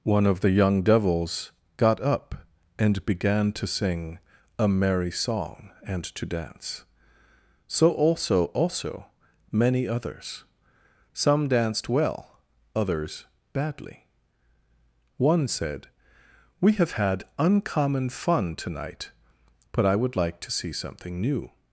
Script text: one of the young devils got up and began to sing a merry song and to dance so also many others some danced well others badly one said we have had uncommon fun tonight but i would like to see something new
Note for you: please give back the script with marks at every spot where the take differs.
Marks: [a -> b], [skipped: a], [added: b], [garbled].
one of the young devils got up and began to sing a merry song and to dance so also [added: also] many others some danced well others badly one said we have had uncommon fun tonight but i would like to see something new